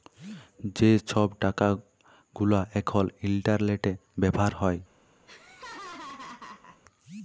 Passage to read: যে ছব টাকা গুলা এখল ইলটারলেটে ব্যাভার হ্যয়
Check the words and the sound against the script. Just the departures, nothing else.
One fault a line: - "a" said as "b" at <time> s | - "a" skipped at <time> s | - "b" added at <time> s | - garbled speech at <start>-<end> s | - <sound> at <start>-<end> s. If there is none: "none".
- laugh at 5.3-6.8 s